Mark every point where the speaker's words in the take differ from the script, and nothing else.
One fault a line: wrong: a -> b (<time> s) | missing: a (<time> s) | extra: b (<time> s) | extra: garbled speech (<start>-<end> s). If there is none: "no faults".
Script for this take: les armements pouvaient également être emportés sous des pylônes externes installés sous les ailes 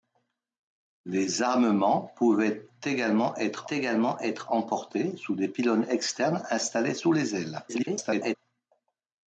extra: également être (3.7 s)
extra: garbled speech (7.7-8.4 s)